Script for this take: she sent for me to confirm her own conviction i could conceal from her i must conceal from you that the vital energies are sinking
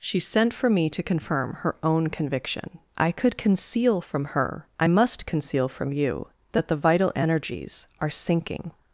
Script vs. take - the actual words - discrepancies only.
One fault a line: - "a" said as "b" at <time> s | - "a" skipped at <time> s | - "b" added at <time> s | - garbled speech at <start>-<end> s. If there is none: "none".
none